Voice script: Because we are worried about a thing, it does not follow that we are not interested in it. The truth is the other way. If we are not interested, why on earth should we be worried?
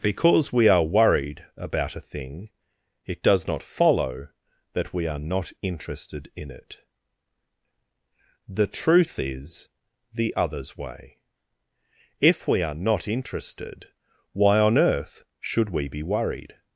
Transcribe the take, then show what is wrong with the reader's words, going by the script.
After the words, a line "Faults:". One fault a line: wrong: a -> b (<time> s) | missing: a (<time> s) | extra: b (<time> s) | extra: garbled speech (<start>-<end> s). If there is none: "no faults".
Because we are worried about a thing, it does not follow that we are not interested in it. The truth is the others way. If we are not interested, why on earth should we be worried?
Faults:
wrong: other -> others (10.3 s)